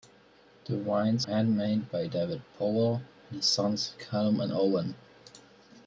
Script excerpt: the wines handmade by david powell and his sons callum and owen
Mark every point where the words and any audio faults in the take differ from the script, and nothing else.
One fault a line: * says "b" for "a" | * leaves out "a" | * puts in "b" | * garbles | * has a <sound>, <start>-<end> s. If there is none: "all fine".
all fine